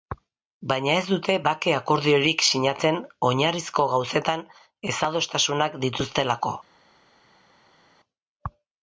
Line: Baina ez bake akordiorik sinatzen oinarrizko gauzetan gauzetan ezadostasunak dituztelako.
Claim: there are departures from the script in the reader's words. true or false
true